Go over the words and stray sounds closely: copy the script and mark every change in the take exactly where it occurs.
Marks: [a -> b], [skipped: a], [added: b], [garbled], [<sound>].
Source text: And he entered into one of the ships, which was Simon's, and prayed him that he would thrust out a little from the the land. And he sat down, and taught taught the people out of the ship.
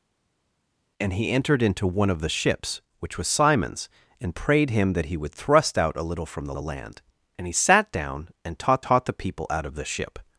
And he entered into one of the ships, which was Simon's, and prayed him that he would thrust out a little from the the land. And he sat down, and taught taught the people out of the ship.